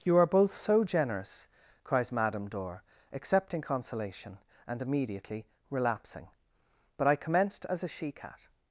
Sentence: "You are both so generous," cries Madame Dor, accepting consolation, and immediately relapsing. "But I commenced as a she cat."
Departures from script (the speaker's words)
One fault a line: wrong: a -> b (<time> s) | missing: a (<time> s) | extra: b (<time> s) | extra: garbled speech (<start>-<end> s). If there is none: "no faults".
no faults